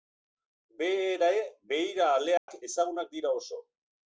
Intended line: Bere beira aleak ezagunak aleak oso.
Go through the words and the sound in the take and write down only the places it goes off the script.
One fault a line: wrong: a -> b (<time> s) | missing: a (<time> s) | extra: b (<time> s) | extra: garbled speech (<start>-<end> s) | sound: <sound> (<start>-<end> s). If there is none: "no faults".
sound: dropout (2.4-2.5 s)
wrong: aleak -> dira (3.2 s)